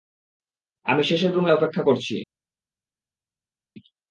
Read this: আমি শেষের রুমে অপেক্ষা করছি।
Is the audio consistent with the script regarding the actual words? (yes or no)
yes